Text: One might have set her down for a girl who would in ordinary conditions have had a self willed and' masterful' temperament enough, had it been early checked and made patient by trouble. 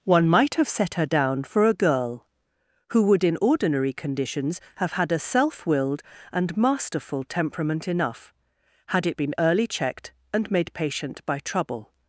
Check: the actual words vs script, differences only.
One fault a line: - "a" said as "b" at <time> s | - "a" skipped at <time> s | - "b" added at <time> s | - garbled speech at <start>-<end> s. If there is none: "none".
none